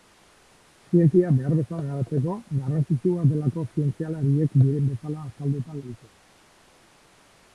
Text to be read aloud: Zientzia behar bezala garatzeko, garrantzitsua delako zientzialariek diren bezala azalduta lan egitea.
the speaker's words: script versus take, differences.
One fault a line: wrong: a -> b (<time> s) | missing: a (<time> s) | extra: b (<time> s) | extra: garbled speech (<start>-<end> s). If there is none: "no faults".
missing: lan (5.8 s)